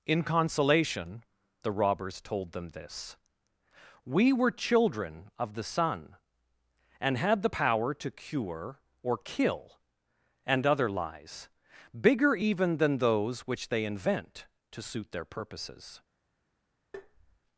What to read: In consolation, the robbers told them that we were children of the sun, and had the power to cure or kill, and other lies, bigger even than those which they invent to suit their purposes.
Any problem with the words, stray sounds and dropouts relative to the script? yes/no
yes